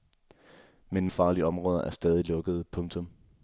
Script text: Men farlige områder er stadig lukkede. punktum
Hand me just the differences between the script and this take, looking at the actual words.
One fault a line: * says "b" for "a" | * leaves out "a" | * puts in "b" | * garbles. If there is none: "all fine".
all fine